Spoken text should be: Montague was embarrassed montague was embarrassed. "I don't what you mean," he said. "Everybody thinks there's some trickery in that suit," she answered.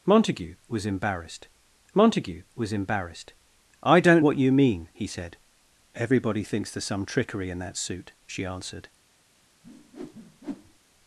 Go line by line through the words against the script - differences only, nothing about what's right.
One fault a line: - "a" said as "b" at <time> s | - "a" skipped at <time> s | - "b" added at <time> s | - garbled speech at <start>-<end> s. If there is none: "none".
none